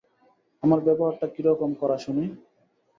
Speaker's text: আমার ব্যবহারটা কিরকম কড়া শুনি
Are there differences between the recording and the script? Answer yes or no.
no